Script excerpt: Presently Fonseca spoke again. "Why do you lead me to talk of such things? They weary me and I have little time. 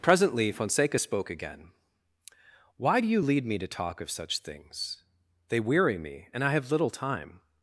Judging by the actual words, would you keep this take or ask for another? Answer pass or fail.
pass